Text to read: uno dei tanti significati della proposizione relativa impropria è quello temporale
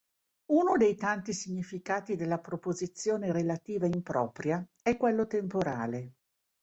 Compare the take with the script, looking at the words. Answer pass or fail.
pass